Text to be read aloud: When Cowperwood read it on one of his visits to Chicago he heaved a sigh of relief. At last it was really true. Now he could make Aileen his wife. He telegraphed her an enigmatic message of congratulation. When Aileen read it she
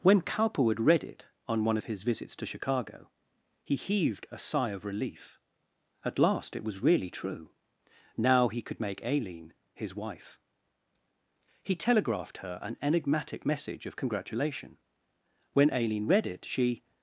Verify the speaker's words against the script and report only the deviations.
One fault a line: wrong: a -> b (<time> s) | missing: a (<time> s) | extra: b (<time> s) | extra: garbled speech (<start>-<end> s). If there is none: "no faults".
no faults